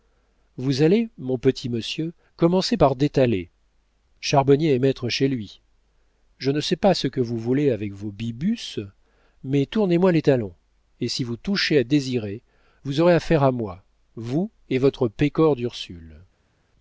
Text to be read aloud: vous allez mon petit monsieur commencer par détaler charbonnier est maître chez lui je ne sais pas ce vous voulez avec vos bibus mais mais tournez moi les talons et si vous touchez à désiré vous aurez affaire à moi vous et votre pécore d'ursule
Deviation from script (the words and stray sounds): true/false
true